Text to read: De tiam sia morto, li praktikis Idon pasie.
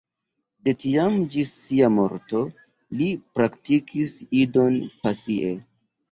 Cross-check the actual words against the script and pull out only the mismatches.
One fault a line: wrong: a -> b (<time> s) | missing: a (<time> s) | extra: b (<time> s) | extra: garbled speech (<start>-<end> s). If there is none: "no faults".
extra: ĝis (1.3 s)